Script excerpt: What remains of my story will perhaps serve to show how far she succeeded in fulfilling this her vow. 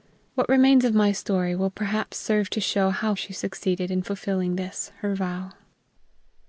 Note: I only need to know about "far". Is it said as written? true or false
false